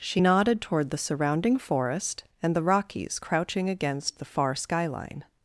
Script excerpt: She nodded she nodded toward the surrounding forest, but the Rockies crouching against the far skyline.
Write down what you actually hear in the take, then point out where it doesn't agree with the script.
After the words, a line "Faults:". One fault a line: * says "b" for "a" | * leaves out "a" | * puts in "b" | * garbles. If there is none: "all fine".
She nodded toward the surrounding forest, and the Rockies crouching against the far skyline.
Faults:
* leaves out "she nodded"
* says "and" for "but"